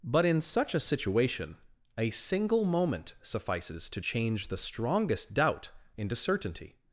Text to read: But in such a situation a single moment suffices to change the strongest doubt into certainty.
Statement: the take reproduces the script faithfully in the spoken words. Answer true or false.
true